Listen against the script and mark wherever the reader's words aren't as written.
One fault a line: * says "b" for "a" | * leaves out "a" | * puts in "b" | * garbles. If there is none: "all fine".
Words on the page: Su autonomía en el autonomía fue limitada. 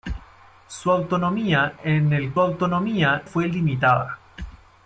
all fine